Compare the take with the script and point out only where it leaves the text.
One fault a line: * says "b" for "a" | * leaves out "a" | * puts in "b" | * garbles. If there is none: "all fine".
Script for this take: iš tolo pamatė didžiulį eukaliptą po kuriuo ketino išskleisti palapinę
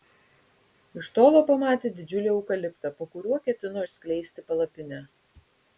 all fine